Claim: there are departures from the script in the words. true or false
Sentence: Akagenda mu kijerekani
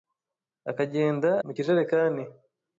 false